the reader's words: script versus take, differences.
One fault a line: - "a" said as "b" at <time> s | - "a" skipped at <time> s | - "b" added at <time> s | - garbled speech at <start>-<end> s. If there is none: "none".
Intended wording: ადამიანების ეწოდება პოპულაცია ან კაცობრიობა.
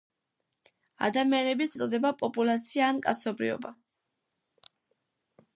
none